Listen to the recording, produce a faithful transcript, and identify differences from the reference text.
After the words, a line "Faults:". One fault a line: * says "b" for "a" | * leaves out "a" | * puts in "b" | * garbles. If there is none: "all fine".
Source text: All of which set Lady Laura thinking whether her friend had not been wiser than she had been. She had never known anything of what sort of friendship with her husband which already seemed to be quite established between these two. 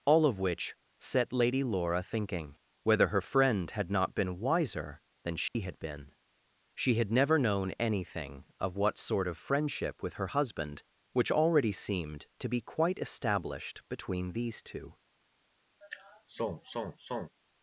All of which set Lady Laura thinking whether her friend had not been wiser than she had been. She had never known anything of what sort of friendship with her husband which already seemed to be quite established between these two.
Faults:
all fine